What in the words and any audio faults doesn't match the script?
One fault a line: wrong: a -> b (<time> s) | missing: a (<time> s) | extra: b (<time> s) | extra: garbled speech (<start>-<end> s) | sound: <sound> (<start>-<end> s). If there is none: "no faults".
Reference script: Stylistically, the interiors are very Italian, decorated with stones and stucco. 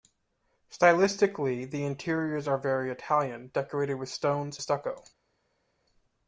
missing: and (4.6 s)